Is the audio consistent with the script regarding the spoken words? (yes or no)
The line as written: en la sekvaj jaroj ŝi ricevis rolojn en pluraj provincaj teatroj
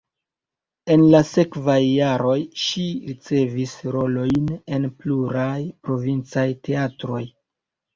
yes